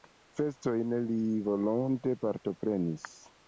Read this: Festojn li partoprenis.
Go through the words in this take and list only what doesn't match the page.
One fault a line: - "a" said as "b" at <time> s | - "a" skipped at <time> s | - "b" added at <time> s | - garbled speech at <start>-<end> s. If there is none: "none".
- "volonte" added at 1.5 s